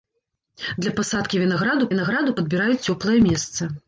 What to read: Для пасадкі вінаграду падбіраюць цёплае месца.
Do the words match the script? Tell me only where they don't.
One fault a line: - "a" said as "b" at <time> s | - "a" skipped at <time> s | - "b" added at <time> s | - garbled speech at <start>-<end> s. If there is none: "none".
- "вінаграду" added at 1.9 s